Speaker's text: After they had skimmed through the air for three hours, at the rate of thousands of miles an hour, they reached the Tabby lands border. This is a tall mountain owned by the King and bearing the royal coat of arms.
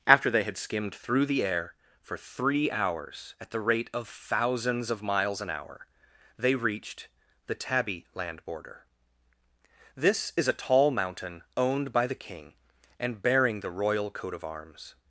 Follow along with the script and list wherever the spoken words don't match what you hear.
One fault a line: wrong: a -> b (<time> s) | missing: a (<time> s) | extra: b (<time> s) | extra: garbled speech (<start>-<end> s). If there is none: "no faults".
wrong: lands -> land (8.1 s)